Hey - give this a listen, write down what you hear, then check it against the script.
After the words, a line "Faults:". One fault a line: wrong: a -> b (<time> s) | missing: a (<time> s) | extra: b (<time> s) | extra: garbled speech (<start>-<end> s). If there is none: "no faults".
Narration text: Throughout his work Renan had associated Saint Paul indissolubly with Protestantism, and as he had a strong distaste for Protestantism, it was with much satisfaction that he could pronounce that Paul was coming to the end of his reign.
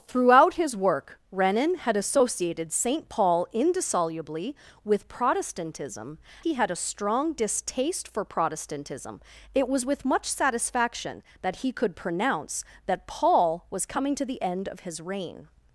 Throughout his work Renan had associated Saint Paul indissolubly with Protestantism, he had a strong distaste for Protestantism, it was with much satisfaction that he could pronounce that Paul was coming to the end of his reign.
Faults:
missing: and as (6.2 s)